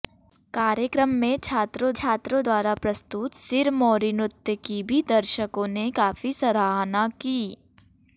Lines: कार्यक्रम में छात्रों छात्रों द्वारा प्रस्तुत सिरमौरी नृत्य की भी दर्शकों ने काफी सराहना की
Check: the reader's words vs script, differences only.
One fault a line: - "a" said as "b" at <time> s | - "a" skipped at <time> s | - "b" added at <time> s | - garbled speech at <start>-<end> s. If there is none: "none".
none